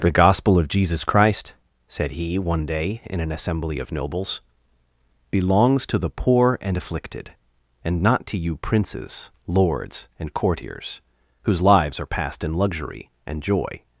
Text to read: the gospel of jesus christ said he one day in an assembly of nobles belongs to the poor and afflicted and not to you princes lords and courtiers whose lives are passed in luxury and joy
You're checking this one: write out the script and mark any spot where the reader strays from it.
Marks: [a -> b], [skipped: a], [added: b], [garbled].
the gospel of jesus christ said he one day in an assembly of nobles belongs to the poor and afflicted and not to you princes lords and courtiers whose lives are passed in luxury and joy